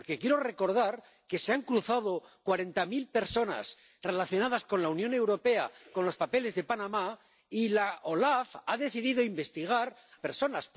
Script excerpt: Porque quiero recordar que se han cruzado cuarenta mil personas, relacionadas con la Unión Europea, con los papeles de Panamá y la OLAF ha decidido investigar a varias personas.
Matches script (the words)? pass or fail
fail